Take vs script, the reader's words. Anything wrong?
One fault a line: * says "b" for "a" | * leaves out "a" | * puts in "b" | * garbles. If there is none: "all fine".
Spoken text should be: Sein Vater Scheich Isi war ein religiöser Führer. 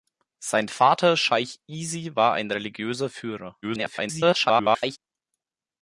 * garbles